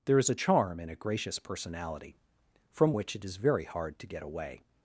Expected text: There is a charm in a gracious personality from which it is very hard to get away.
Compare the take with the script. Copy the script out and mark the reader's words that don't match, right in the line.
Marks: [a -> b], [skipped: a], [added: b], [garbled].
There is a charm in a gracious personality from which it is very hard to get away.